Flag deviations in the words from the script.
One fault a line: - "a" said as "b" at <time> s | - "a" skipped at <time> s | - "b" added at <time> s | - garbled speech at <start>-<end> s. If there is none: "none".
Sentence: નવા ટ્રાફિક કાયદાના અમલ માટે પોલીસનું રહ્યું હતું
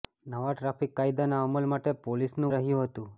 none